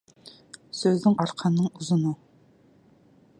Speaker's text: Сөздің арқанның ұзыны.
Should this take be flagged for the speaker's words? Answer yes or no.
no